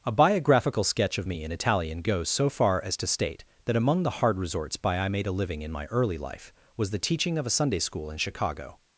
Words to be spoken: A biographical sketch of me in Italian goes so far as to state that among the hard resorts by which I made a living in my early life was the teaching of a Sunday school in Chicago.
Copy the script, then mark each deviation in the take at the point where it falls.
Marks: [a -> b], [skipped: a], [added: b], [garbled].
A biographical sketch of me in Italian goes so far as to state that among the hard resorts by [skipped: which] I made a living in my early life was the teaching of a Sunday school in Chicago.